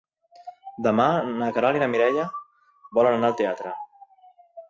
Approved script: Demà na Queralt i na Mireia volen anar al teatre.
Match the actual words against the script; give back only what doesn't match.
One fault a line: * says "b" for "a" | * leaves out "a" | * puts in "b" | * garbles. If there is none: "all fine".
all fine